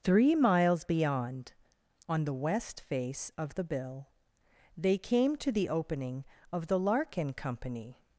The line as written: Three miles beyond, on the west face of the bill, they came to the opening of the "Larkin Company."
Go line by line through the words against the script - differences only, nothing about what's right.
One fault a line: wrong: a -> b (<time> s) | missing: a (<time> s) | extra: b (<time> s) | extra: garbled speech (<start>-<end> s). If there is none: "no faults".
no faults